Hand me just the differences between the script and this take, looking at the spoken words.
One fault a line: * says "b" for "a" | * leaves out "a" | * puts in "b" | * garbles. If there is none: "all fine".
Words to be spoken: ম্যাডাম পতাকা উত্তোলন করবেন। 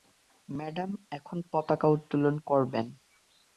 * puts in "এখন"